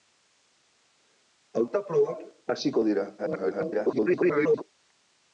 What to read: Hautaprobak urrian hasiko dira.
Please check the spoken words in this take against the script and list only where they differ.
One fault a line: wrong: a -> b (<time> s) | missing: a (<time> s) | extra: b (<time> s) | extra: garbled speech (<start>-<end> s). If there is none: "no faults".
missing: urrian (2.2 s)
extra: garbled speech (3.2-4.6 s)